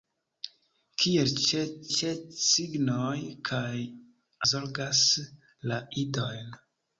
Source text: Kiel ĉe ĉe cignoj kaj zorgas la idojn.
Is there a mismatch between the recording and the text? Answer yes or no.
no